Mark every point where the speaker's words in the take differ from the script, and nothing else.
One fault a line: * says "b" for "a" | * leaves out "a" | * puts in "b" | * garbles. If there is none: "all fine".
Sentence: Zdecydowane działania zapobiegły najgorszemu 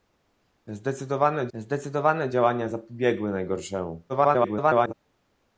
* puts in "zdecydowane"
* garbles